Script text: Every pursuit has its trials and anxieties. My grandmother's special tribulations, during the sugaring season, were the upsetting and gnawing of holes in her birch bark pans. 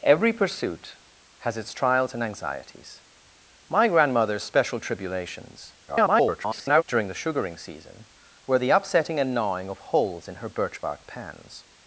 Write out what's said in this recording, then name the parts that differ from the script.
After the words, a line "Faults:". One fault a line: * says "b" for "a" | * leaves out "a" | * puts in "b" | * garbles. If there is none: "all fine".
Every pursuit has its trials and anxieties. My grandmother's special tribulations, [garbled] during the sugaring season, were the upsetting and gnawing of holes in her birch bark pans.
Faults:
* garbles